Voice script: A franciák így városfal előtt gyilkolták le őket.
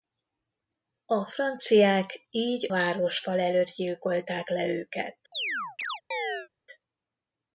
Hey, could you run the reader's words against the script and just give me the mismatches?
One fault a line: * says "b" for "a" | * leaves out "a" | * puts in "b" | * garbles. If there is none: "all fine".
all fine